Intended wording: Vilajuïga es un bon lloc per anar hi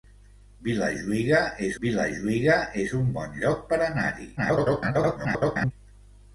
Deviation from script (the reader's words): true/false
true